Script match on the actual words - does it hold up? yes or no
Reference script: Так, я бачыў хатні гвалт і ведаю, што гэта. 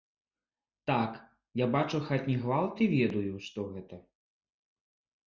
yes